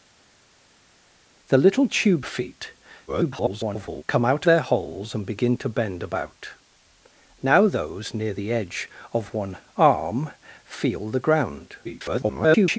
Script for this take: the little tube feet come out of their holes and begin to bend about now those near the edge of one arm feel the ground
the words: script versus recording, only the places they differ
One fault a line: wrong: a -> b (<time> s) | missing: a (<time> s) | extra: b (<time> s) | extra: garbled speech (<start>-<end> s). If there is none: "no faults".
extra: garbled speech (3.1-4.0 s)
missing: of (4.5 s)
extra: garbled speech (11.8-12.8 s)